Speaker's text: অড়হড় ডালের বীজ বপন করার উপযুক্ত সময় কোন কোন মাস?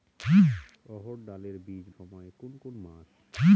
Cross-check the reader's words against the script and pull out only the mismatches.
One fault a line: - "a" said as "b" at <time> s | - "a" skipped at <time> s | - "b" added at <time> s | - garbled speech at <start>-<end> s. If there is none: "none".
- "বপন করার উপযুক্ত" skipped at 1.9 s